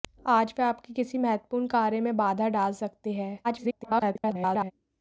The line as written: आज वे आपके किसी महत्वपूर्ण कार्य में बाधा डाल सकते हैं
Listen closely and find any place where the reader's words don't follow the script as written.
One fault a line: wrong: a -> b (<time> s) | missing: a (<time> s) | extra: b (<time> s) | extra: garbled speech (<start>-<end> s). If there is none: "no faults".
extra: garbled speech (3.4-4.7 s)